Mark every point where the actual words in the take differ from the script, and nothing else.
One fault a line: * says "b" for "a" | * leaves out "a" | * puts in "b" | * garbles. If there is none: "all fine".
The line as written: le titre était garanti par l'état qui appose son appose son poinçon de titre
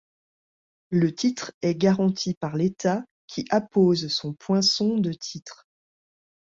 * says "est" for "était"
* leaves out "appose son"